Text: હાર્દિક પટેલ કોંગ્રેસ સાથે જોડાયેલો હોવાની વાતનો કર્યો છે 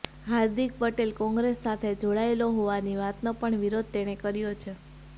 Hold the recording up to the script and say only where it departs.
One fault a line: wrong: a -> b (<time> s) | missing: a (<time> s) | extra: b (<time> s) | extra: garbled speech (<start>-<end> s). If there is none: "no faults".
extra: પણ વિરોધ તેણે (3.4 s)